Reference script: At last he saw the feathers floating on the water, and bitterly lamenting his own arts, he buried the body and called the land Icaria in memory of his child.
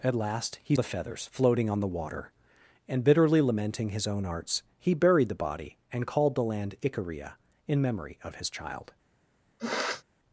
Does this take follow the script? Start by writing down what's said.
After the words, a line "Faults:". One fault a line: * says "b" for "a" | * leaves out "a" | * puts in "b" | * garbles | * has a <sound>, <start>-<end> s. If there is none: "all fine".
At last he the feathers floating on the water, and bitterly lamenting his own arts, he buried the body and called the land Icaria in memory of his child.
Faults:
* leaves out "saw"
* has a sniff, 9.6-10.0 s